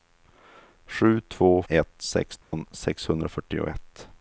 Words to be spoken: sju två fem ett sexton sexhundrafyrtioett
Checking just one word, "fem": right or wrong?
wrong